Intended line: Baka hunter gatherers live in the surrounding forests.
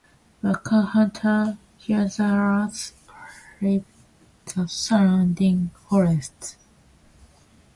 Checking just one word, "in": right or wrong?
wrong